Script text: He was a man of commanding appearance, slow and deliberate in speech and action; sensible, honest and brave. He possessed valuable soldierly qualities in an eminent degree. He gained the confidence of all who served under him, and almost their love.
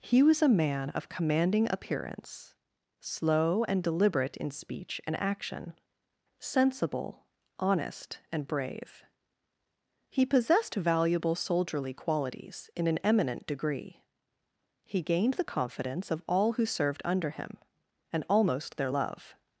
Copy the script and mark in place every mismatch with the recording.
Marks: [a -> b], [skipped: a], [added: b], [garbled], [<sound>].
He was a man of commanding appearance, slow and deliberate in speech and action; sensible, honest and brave. He possessed valuable soldierly qualities in an eminent degree. He gained the confidence of all who served under him, and almost their love.